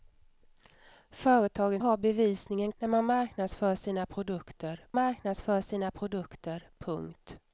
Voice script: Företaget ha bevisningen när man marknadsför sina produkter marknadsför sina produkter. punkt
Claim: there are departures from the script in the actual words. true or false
false